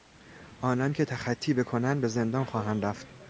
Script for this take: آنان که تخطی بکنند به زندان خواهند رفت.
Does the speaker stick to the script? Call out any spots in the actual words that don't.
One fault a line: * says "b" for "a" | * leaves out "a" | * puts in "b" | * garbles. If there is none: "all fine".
all fine